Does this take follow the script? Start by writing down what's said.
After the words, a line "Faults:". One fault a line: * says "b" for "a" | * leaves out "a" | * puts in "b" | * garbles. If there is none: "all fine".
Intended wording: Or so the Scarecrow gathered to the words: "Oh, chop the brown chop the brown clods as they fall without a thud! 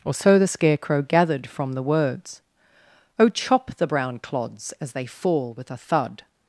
Or so the Scarecrow gathered from the words: "Oh, chop the brown clods as they fall with a thud!
Faults:
* says "from" for "to"
* leaves out "chop the brown"
* says "with" for "without"